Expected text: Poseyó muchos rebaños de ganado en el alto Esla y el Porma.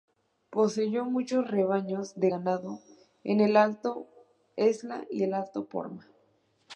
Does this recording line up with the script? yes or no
no